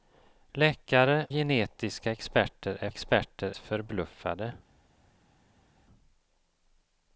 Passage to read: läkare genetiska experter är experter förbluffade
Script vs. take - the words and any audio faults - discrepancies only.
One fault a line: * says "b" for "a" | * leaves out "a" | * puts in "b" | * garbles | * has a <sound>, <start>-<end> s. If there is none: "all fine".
all fine